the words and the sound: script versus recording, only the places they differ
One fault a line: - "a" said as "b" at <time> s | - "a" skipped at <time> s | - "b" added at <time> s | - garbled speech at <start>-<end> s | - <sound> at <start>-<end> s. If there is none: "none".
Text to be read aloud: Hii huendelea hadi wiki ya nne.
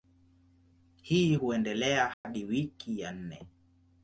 - dropout at 2.1-2.2 s